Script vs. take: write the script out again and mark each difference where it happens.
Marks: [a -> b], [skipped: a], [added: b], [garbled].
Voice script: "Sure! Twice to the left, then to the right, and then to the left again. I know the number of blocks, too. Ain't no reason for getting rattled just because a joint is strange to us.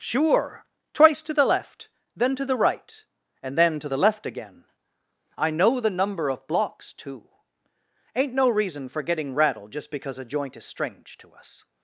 "Sure! Twice to the left, then to the right, and then to the left again. I know the number of blocks, too. Ain't no reason for getting rattled just because a joint is strange to us.